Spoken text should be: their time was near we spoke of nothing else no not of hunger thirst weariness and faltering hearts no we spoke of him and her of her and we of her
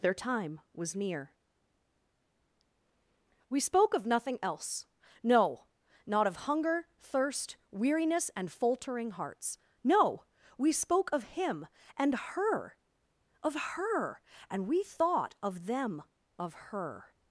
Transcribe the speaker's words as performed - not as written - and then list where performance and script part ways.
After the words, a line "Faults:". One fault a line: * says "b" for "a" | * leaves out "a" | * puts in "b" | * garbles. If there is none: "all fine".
their time was near we spoke of nothing else no not of hunger thirst weariness and faltering hearts no we spoke of him and her of her and we thought of them of her
Faults:
* puts in "thought of them"